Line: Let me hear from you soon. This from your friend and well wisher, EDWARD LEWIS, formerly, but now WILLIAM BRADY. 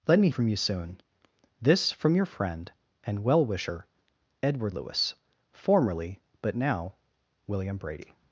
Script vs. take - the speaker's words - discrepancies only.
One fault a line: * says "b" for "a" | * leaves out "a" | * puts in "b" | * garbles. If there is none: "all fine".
* leaves out "hear"